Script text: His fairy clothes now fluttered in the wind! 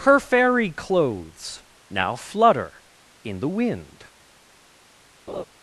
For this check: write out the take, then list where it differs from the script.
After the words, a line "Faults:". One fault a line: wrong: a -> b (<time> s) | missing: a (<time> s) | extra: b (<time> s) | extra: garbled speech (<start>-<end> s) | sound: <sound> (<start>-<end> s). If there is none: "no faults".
Her fairy clothes now flutter in the wind!
Faults:
wrong: His -> Her (0.0 s)
wrong: fluttered -> flutter (2.2 s)
sound: laugh (5.3-5.4 s)